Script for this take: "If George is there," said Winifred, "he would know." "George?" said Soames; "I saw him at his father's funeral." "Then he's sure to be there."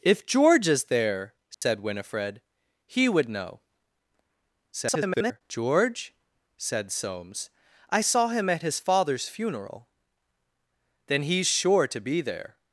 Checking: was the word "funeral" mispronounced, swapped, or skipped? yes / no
no